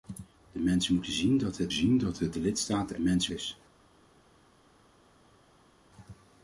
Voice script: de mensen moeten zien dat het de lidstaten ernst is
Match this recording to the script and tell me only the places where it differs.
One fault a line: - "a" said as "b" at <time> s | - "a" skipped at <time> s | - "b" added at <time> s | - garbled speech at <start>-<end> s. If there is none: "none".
- "zien dat het" added at 1.7 s
- "ernst" said as "mensen" at 3.0 s